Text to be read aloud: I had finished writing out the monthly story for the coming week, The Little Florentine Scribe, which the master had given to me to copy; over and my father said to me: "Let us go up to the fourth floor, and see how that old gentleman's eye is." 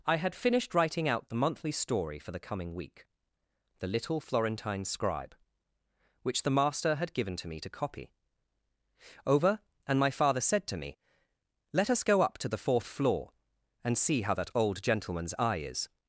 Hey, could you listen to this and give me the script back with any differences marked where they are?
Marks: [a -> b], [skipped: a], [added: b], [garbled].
I had finished writing out the monthly story for the coming week, The Little Florentine Scribe, which the master had given to me to copy; over and my father said to me: "Let us go up to the fourth floor, and see how that old gentleman's eye is."